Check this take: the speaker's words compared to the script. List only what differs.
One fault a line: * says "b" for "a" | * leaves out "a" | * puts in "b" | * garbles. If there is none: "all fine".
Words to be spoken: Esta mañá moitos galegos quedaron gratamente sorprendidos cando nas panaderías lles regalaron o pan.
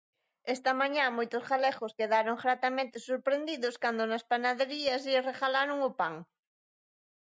all fine